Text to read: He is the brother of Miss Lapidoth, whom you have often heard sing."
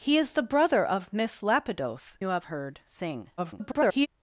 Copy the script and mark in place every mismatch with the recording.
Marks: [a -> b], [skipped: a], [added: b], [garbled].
He is the brother of Miss Lapidoth, [skipped: whom] you have [skipped: often] heard sing." [garbled]